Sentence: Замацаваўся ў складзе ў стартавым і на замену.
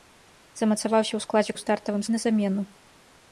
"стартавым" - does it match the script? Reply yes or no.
yes